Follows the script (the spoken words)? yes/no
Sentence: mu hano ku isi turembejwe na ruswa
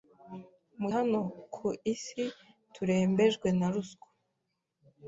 yes